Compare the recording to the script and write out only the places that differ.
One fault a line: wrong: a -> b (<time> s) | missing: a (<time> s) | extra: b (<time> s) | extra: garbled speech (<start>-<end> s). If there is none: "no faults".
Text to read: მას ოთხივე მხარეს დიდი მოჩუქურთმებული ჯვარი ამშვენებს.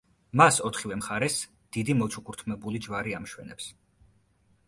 no faults